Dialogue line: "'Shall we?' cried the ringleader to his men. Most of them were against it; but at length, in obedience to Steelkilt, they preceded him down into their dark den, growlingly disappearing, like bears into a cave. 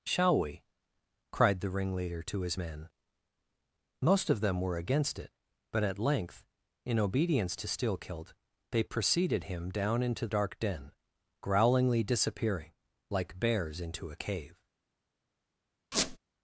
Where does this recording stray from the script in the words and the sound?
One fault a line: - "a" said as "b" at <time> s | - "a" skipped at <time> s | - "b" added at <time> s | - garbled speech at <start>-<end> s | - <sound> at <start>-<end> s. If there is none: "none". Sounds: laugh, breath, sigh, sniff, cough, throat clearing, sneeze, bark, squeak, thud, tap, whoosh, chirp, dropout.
- "their" skipped at 10.3 s
- squeak at 15.9-16.2 s